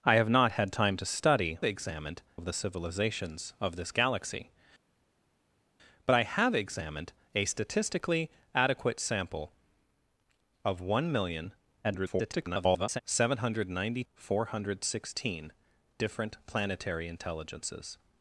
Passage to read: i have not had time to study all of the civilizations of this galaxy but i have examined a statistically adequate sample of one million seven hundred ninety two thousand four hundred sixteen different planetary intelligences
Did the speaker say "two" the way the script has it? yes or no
no